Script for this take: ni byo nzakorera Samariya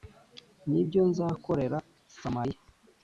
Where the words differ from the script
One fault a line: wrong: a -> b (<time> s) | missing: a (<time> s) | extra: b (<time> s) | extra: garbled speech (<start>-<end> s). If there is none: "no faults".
no faults